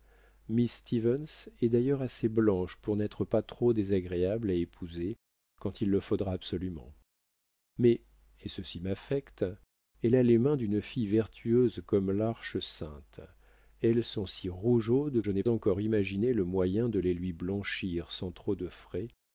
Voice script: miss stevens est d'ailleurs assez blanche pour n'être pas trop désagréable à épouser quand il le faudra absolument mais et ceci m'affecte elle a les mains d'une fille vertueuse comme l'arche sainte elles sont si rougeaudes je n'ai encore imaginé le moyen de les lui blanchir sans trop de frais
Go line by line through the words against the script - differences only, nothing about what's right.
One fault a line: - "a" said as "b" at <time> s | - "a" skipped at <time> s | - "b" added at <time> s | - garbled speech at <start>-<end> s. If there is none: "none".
none